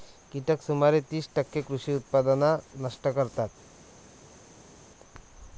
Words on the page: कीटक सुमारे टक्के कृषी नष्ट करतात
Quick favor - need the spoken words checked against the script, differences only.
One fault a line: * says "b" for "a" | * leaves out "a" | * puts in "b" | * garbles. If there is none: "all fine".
* puts in "तीस"
* puts in "उत्पादन"